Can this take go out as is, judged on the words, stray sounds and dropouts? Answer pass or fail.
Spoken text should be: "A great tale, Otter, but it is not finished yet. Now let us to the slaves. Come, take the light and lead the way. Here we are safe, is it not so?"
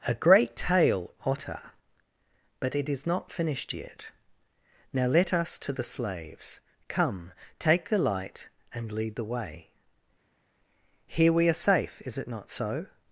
pass